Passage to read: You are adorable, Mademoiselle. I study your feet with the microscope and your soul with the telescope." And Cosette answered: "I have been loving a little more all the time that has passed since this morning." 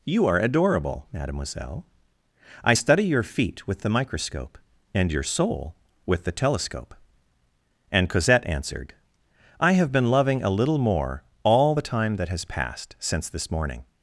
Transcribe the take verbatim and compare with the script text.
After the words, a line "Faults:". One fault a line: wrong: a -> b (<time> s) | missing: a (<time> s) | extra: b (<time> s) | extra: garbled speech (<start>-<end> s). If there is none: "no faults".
You are adorable, Mademoiselle. I study your feet with the microscope and your soul with the telescope." And Cosette answered: "I have been loving a little more all the time that has passed since this morning."
Faults:
no faults